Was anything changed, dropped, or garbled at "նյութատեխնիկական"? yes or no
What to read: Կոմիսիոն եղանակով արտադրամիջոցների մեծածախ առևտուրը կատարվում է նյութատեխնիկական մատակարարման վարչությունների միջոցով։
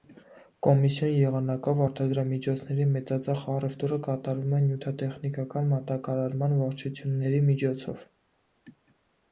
no